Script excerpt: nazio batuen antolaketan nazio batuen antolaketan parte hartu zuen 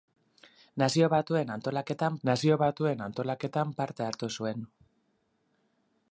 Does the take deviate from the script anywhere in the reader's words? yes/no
no